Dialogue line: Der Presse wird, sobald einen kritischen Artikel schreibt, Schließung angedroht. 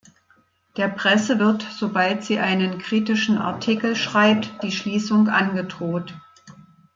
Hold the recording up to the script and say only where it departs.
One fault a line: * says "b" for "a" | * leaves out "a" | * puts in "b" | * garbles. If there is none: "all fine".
* puts in "sie"
* puts in "die"